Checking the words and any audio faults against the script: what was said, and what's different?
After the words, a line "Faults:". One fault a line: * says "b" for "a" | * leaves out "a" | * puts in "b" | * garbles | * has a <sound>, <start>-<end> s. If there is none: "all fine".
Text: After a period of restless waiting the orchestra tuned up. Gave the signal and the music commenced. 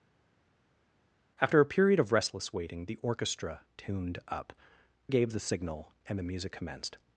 After a period of restless waiting the orchestra tuned up. Gave the signal and the music commenced.
Faults:
all fine